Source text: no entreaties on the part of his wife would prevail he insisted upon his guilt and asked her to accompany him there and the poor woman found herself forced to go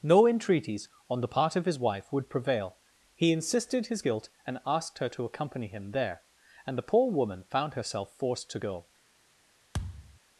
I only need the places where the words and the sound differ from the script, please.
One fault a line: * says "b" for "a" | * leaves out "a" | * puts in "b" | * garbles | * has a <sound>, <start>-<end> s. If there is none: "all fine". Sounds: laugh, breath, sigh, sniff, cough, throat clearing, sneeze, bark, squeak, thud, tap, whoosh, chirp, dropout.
* leaves out "upon"
* has a thud, 9.7-10.2 s